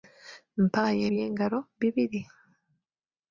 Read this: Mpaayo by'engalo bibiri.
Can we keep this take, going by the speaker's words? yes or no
yes